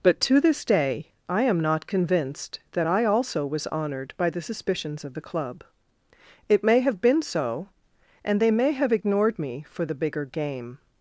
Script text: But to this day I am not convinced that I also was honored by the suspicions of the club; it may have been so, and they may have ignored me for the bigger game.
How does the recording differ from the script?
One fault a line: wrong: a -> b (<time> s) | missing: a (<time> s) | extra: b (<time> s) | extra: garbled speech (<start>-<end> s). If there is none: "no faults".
no faults